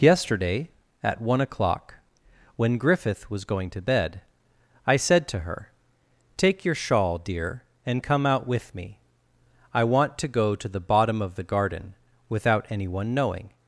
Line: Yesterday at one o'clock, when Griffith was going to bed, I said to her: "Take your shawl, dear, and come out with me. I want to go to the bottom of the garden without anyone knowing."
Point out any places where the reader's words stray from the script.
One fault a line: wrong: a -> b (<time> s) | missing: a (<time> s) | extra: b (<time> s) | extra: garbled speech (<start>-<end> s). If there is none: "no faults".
no faults